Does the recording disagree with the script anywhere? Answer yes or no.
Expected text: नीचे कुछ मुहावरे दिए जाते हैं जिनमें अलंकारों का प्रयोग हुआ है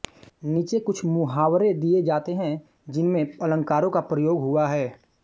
no